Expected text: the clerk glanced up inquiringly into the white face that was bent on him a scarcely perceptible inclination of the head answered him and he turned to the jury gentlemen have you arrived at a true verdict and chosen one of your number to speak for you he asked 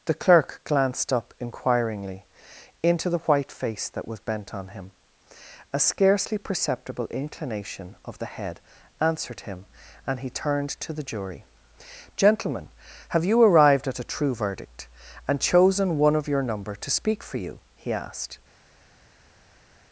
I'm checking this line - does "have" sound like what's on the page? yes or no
yes